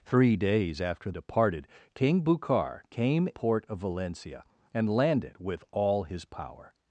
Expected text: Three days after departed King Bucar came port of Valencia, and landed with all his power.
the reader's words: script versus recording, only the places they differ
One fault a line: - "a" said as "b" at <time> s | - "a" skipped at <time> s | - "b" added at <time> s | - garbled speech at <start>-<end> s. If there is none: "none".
none